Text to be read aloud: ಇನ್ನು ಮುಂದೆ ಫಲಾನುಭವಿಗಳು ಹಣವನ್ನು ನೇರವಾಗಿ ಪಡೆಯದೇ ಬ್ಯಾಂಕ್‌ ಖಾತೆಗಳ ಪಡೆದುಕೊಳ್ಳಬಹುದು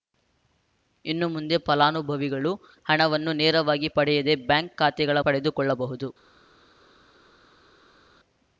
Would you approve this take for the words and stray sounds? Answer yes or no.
yes